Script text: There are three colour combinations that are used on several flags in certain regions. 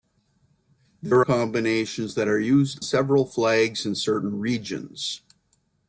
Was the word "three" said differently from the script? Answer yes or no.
yes